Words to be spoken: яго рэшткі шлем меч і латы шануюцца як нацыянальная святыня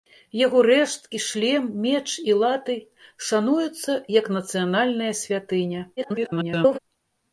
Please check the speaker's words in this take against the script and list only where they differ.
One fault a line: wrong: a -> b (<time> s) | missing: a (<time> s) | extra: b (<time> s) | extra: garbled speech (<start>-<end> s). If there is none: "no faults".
extra: garbled speech (6.0-6.8 s)